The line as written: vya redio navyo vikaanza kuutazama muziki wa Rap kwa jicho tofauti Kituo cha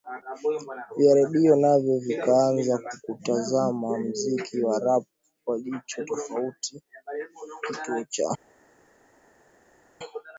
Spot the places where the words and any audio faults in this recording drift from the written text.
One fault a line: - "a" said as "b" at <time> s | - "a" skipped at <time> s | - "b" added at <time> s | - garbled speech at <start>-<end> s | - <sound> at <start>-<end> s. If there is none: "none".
none